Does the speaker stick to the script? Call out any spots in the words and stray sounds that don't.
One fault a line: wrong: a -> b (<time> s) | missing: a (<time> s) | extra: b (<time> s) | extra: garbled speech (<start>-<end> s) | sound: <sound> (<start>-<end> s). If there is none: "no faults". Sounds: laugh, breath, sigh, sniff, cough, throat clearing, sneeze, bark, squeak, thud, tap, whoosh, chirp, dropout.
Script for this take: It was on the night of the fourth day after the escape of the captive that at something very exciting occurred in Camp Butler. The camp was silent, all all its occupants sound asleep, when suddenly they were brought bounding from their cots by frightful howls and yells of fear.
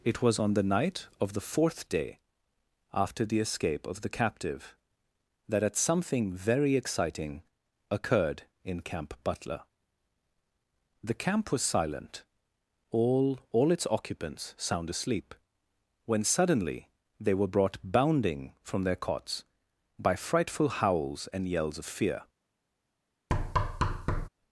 sound: thud (23.3-24.3 s)